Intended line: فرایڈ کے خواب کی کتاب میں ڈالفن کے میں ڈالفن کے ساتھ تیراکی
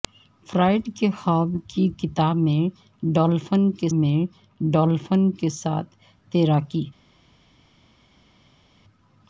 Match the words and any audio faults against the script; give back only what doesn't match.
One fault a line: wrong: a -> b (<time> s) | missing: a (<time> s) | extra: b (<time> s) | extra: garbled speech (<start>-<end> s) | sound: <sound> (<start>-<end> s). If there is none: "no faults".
no faults